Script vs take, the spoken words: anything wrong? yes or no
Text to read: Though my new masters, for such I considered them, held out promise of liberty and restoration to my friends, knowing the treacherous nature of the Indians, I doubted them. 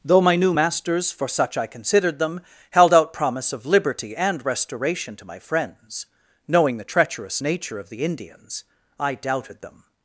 no